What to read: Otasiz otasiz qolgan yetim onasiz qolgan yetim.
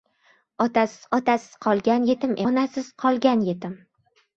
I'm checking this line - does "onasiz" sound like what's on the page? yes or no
yes